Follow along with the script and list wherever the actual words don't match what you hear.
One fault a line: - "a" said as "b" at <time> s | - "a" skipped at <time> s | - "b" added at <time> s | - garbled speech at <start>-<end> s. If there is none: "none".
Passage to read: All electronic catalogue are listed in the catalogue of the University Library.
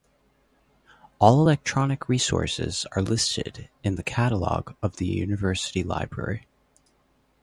- "catalogue" said as "resources" at 2.1 s